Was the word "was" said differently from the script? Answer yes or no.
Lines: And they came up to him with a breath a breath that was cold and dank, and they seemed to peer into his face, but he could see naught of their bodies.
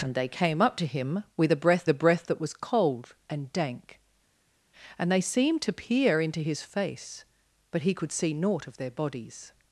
no